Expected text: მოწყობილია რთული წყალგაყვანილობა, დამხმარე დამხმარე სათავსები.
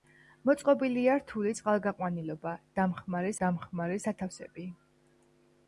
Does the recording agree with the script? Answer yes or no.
yes